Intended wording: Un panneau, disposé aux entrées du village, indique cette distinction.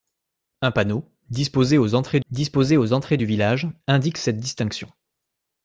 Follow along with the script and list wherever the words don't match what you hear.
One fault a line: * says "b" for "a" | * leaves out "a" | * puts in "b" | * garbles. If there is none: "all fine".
* puts in "disposé aux entrées"